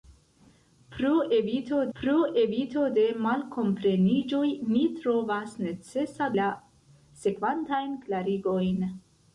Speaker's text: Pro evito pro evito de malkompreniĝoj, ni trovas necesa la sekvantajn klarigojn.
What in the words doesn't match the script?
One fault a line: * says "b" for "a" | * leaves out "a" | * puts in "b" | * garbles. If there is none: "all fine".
all fine